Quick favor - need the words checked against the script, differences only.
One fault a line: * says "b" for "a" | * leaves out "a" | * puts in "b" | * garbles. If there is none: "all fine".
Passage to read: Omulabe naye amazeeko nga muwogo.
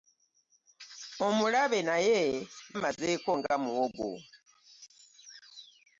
all fine